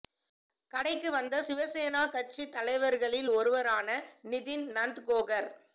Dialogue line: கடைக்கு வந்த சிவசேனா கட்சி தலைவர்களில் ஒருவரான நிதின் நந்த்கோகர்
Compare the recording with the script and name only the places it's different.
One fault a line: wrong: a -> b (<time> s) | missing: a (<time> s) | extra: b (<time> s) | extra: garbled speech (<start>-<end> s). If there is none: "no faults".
no faults